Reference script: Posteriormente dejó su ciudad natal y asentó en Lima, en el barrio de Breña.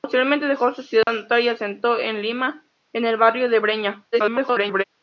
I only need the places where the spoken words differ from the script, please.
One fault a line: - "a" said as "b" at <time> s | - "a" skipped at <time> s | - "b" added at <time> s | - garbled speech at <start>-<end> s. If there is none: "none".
- garbled speech at 4.1-4.8 s